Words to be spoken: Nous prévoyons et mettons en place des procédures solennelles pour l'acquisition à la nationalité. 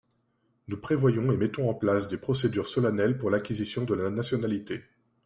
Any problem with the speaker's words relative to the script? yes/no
yes